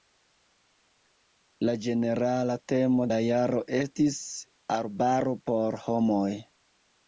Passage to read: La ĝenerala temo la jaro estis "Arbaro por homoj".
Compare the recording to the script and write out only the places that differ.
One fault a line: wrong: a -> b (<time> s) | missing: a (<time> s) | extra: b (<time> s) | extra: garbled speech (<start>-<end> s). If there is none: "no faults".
no faults